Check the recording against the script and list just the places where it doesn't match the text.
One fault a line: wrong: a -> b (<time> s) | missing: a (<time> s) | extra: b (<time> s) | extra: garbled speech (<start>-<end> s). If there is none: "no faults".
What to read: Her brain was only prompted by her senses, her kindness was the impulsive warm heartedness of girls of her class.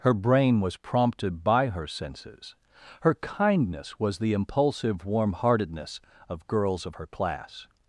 missing: only (0.8 s)